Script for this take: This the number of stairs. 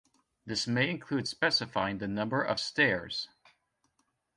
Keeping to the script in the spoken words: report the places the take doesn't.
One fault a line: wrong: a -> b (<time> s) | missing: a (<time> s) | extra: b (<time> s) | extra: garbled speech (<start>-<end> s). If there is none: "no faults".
extra: may include specifying (0.7 s)